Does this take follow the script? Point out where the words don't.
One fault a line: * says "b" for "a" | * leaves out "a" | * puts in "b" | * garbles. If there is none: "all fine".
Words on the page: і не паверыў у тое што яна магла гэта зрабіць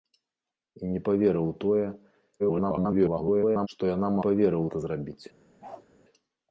* garbles
* says "паверыў" for "магла"